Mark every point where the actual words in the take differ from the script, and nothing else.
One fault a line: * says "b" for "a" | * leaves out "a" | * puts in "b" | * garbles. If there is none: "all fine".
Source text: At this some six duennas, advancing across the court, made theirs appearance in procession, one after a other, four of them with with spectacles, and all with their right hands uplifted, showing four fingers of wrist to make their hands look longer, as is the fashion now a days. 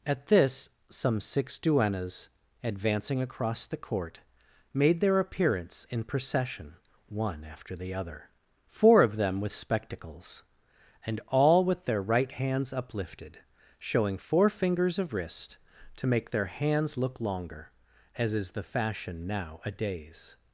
* says "their" for "theirs"
* says "the" for "a"
* leaves out "with"